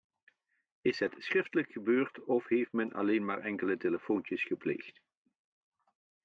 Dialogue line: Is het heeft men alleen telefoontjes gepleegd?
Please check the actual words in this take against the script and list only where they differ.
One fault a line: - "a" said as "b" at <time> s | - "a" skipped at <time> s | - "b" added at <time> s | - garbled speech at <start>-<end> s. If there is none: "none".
- "schriftelijk gebeurd of" added at 1.2 s
- "maar enkele" added at 3.2 s